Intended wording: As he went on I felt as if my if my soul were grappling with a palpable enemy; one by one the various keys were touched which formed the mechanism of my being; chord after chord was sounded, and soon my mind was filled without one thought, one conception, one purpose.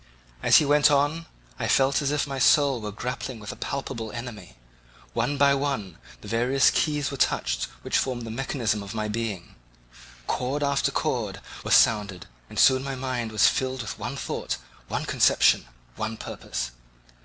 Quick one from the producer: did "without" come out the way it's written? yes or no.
no